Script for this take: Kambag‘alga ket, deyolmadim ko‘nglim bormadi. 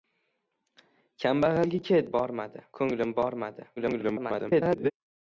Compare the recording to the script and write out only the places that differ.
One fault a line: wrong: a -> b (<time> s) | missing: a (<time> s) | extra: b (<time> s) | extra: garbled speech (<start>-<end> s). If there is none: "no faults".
wrong: deyolmadim -> bormadi (2.2 s)
extra: garbled speech (3.8-4.9 s)